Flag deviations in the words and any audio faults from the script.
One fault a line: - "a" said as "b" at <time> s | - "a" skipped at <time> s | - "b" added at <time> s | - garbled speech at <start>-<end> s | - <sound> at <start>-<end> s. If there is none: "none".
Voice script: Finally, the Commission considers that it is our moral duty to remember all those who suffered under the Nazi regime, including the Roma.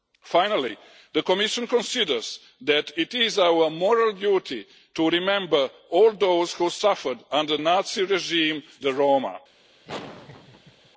- "the" skipped at 7.6 s
- "including" skipped at 8.6 s
- laugh at 9.8-10.9 s